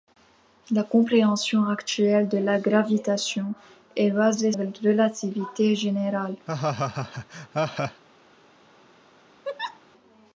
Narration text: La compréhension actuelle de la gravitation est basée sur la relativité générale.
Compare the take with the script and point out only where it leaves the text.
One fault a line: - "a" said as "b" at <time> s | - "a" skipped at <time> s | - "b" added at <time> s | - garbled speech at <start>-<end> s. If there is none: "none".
- "sur la" skipped at 4.5 s